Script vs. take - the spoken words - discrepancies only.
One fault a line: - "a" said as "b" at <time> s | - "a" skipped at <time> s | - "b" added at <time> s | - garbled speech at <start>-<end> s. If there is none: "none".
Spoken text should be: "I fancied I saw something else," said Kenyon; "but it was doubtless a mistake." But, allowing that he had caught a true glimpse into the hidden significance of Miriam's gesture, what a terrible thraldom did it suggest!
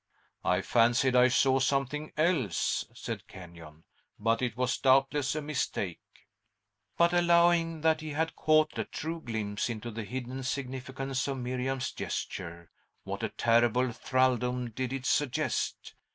none